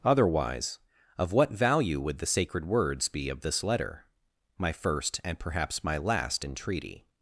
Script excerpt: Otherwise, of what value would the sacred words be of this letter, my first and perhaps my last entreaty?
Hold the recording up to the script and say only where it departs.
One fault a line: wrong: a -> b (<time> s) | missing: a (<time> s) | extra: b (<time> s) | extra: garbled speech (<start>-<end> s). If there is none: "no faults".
no faults